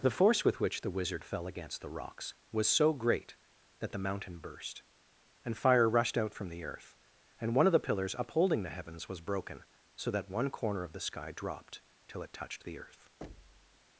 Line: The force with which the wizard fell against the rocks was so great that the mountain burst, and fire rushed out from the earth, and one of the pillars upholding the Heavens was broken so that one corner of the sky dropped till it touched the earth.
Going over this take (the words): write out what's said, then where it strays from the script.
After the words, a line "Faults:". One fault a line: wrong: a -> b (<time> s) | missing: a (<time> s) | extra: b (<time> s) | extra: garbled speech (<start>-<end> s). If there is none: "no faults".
The force with which the wizard fell against the rocks was so great that the mountain burst, and fire rushed out from the earth, and one of the pillars upholding the Heavens was broken so that one corner of the sky dropped till it touched the earth.
Faults:
no faults